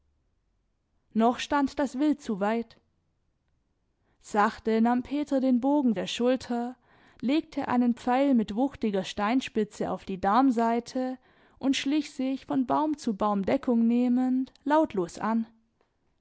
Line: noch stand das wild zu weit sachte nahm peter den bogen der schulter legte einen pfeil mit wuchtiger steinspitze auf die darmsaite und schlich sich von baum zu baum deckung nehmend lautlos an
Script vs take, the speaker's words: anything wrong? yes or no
no